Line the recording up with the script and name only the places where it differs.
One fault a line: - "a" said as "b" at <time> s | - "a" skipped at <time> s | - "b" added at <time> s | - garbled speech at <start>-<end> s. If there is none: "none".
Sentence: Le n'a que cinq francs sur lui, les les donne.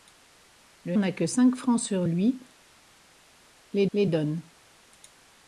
none